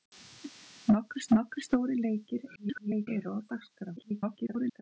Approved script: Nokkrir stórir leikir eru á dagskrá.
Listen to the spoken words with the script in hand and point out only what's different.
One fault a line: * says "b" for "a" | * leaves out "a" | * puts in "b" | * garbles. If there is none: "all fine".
* puts in "nokkrir"
* garbles
* garbles